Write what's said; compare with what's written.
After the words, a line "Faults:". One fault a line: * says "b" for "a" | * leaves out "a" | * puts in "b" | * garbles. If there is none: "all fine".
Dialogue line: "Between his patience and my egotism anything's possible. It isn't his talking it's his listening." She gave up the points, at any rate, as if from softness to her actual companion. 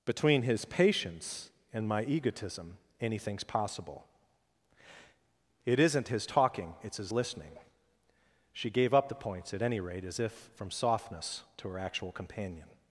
"Between his patience and my egotism anything's possible. It isn't his talking it's his listening." She gave up the points, at any rate, as if from softness to her actual companion.
Faults:
all fine